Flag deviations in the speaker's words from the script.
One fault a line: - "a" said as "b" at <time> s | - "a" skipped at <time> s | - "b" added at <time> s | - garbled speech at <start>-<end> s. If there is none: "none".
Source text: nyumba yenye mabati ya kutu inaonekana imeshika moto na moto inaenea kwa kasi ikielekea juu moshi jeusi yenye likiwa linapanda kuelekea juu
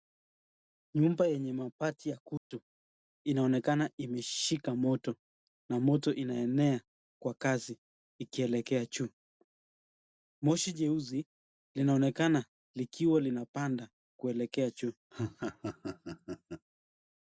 - "yenye" said as "linaonekana" at 11.8 s